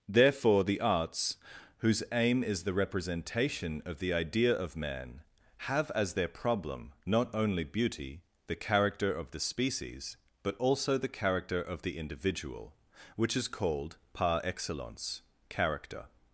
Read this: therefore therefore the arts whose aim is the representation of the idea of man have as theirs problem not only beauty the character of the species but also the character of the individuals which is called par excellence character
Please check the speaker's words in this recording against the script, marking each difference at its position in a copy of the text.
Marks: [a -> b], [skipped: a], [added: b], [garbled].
therefore [skipped: therefore] the arts whose aim is the representation of the idea of man have as [theirs -> their] problem not only beauty the character of the species but also the character of the [individuals -> individual] which is called par excellence character